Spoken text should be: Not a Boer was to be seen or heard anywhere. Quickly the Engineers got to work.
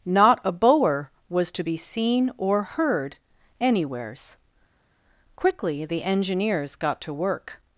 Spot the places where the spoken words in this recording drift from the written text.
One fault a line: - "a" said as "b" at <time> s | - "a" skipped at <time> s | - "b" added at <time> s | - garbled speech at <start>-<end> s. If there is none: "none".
- "anywhere" said as "anywheres" at 3.6 s